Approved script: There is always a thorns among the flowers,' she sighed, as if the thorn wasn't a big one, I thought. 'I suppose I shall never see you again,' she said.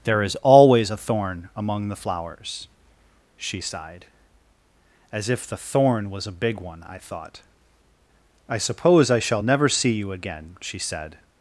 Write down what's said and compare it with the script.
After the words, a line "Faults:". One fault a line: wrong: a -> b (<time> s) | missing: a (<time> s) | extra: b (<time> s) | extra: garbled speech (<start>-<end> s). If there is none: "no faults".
There is always a thorn among the flowers,' she sighed, as if the thorn was a big one, I thought. 'I suppose I shall never see you again,' she said.
Faults:
wrong: thorns -> thorn (1.0 s)
wrong: wasn't -> was (6.1 s)